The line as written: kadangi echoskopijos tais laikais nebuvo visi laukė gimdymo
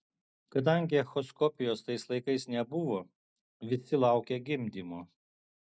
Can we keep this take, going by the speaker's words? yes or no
yes